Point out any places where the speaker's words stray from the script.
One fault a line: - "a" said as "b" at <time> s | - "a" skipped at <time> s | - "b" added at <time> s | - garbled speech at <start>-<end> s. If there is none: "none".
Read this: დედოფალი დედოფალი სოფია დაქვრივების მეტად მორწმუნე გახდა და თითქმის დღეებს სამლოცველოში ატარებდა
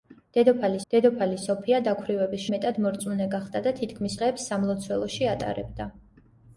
none